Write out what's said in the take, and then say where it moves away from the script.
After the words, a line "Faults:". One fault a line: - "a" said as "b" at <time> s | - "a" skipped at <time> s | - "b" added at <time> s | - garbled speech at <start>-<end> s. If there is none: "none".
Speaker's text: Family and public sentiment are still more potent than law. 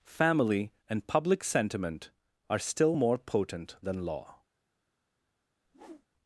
Family and public sentiment are still more potent than law.
Faults:
none